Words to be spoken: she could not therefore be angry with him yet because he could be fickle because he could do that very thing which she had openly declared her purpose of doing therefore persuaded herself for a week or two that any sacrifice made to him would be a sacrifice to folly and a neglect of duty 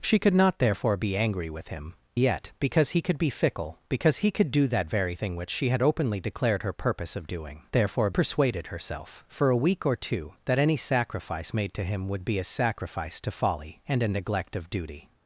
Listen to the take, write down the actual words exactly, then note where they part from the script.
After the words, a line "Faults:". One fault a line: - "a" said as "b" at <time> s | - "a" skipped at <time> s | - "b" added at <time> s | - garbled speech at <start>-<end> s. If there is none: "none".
she could not therefore be angry with him yet because he could be fickle because he could do that very thing which she had openly declared her purpose of doing therefore persuaded herself for a week or two that any sacrifice made to him would be a sacrifice to folly and a neglect of duty
Faults:
none